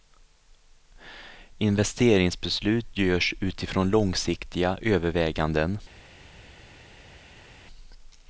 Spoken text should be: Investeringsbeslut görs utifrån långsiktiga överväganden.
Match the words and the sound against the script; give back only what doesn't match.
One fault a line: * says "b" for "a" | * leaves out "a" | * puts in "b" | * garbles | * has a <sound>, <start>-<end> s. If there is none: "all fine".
all fine